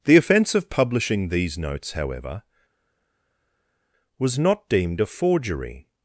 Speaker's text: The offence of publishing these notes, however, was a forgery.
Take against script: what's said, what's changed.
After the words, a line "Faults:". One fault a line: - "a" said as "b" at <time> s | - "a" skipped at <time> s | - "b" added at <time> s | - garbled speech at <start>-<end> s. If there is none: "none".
The offence of publishing these notes, however, was not deemed a forgery.
Faults:
- "not deemed" added at 4.4 s